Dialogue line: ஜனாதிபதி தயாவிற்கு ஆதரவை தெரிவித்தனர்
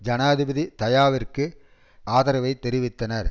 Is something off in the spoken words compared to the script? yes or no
no